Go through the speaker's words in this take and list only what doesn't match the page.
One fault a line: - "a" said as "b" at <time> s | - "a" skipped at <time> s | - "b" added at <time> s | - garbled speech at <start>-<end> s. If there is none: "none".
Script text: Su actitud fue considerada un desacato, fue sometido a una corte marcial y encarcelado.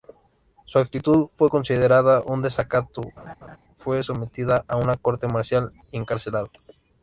none